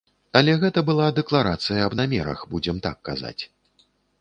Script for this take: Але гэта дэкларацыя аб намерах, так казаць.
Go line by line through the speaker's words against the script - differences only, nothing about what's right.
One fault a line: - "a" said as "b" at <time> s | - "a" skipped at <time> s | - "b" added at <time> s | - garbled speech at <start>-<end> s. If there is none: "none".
- "была" added at 0.9 s
- "будзем" added at 2.5 s